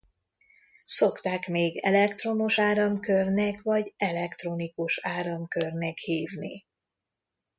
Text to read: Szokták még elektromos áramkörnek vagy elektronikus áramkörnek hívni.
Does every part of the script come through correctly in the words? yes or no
yes